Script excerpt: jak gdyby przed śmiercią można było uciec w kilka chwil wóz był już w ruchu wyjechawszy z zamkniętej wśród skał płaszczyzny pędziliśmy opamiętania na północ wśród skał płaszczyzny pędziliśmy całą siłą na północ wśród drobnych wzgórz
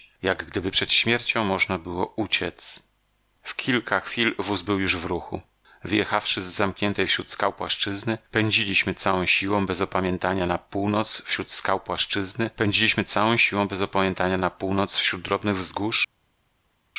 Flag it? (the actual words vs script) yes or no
yes